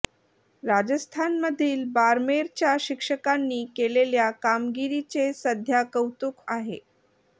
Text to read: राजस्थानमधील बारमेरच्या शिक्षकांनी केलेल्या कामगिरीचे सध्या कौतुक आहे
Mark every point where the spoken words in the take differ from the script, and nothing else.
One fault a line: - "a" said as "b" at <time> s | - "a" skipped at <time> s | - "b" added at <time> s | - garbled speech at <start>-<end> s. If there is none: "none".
none